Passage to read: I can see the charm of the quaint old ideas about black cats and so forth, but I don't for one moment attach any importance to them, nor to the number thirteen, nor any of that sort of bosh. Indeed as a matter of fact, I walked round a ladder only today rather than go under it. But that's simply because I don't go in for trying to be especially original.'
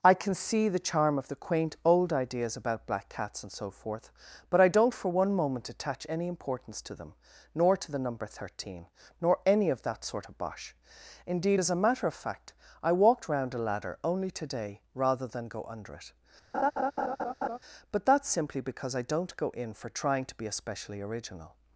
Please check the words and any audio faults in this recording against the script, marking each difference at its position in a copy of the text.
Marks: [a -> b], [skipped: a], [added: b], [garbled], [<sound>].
I can see the charm of the quaint old ideas about black cats and so forth, but I don't for one moment attach any importance to them, nor to the number thirteen, nor any of that sort of bosh. Indeed as a matter of fact, I walked round a ladder only today rather than go under it. [laugh] But that's simply because I don't go in for trying to be especially original.'